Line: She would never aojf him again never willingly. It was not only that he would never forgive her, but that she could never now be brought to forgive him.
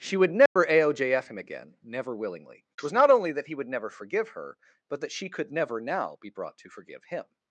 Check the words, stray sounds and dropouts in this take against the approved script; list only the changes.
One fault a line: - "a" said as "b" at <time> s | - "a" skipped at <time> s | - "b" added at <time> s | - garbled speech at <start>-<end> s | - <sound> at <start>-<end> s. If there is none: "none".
- dropout at 0.5-0.6 s